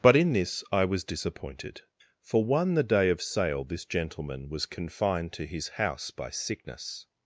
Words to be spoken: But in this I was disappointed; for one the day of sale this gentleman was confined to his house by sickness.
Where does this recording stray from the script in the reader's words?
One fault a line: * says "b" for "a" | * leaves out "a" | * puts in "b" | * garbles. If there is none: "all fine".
all fine